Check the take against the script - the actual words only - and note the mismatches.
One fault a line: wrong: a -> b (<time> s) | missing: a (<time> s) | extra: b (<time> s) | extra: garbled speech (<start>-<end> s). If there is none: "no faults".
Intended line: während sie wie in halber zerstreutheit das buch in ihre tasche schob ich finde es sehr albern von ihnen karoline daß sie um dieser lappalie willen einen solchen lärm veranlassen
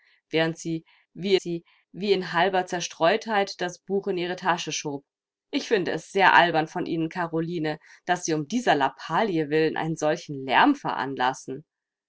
extra: sie wie (1.4 s)